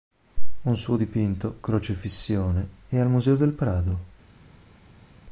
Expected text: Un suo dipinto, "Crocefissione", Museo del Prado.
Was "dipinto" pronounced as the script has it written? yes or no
yes